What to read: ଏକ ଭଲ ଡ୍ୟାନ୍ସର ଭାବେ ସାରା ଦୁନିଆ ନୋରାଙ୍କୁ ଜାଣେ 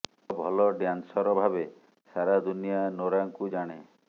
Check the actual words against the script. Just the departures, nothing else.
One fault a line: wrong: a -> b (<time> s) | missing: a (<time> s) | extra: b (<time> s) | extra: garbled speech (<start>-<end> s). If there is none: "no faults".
no faults